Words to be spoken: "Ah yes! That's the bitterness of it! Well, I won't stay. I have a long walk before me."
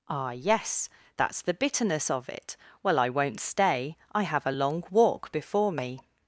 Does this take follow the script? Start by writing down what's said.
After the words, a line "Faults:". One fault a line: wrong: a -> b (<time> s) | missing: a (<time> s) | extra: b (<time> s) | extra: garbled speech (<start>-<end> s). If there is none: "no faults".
"Ah yes! That's the bitterness of it! Well, I won't stay. I have a long walk before me."
Faults:
no faults